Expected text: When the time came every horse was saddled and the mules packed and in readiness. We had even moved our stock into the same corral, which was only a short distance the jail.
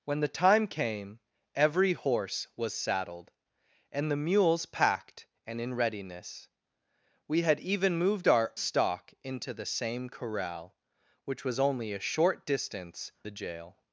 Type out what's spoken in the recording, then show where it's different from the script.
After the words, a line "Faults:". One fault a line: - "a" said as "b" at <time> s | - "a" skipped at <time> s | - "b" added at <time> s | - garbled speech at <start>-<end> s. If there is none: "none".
When the time came every horse was saddled and the mules packed and in readiness. We had even moved our stock into the same corral, which was only a short distance the jail.
Faults:
none